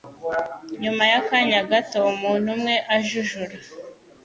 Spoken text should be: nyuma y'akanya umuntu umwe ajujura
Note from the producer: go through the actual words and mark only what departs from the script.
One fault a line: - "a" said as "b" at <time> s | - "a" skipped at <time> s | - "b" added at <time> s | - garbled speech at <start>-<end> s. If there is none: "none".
- "gato" added at 1.7 s